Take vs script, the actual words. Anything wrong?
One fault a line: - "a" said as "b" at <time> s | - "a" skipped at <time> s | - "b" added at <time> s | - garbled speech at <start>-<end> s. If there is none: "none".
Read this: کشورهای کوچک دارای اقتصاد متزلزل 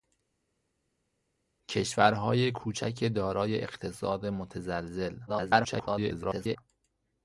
- garbled speech at 5.3-6.6 s